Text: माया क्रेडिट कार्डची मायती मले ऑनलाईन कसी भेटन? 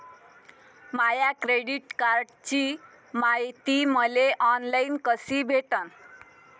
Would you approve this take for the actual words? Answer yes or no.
yes